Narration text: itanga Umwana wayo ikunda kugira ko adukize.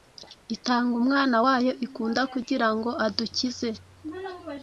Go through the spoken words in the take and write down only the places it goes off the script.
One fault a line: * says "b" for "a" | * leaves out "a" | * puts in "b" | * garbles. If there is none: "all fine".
* says "ngo" for "ko"